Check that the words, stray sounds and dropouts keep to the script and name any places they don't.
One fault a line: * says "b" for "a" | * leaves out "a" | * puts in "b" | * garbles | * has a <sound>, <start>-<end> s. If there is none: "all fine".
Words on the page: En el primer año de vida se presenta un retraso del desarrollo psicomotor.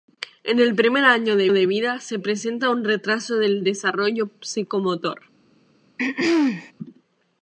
* puts in "de"
* has a throat clearing, 6.0-6.7 s